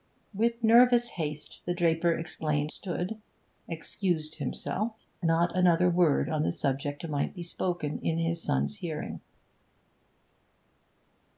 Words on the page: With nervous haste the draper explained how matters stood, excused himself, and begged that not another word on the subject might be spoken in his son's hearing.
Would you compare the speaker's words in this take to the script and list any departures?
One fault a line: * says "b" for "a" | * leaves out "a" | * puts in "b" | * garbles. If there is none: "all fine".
* leaves out "how matters"
* leaves out "and begged that"